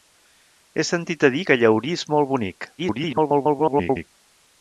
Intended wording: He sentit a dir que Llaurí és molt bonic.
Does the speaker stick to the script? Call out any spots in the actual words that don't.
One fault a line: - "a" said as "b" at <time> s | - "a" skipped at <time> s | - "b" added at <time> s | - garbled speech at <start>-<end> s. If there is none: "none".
- garbled speech at 2.8-4.1 s